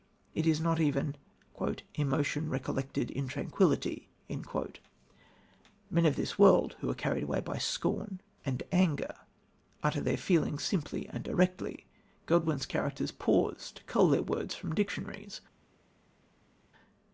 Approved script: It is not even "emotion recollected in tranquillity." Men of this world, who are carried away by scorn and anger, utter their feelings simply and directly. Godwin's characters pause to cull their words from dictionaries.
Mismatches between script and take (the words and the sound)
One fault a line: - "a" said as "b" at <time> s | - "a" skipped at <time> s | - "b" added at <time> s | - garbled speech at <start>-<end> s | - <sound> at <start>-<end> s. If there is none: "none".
none